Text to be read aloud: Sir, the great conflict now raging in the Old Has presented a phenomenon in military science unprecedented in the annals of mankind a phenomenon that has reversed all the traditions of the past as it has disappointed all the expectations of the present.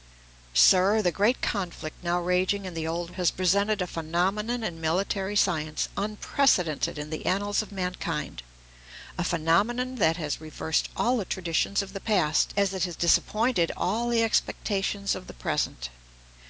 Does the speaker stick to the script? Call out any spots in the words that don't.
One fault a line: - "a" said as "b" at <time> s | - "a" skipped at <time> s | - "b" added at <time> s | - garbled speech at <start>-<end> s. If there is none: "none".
none